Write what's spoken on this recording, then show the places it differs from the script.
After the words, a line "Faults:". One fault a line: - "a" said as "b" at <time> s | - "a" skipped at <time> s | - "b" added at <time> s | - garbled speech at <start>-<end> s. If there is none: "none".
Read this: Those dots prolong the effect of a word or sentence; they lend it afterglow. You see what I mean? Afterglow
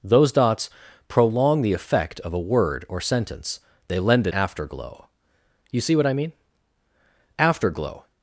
Those dots prolong the effect of a word or sentence; they lend it afterglow. You see what I mean? Afterglow
Faults:
none